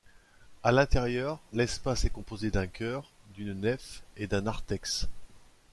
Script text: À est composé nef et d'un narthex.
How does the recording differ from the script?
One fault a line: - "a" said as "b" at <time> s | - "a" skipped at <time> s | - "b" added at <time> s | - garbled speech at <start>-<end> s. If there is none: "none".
- "l'intérieur l'espace" added at 0.7 s
- "d'un chœur d'une" added at 2.5 s